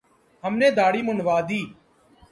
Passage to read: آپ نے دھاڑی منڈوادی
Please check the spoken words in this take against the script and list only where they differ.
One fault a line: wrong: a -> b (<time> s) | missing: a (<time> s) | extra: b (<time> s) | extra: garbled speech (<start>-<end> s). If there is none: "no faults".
wrong: آپ -> ہم (0.4 s)